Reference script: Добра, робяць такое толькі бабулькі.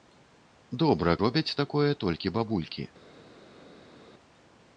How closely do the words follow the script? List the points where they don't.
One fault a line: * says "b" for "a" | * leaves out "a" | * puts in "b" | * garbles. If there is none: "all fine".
all fine